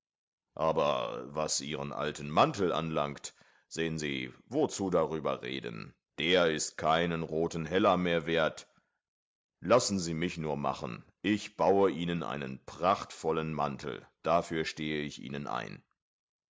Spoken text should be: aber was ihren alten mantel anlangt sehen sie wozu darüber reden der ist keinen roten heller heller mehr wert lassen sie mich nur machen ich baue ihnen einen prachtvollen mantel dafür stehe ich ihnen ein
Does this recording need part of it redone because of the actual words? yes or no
yes